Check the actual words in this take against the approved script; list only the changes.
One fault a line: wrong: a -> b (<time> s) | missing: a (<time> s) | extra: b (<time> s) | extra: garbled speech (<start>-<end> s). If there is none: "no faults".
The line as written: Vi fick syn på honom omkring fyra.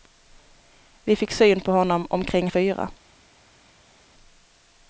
no faults